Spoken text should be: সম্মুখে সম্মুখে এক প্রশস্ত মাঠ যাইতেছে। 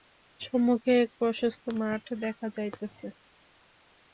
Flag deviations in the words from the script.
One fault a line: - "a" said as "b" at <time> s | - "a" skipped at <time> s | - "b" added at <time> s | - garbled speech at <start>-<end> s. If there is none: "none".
- "সম্মুখে" skipped at 0.9 s
- "দেখা" added at 2.2 s